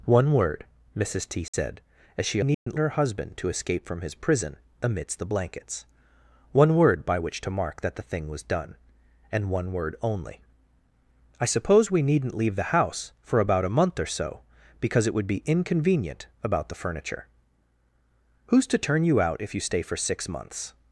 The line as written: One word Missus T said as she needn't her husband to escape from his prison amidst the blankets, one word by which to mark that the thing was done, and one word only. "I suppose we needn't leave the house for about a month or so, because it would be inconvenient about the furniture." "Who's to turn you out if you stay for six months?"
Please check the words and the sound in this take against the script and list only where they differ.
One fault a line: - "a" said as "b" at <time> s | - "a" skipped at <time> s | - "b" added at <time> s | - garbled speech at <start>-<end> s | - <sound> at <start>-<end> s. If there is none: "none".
- dropout at 1.5-1.5 s
- dropout at 2.5-2.7 s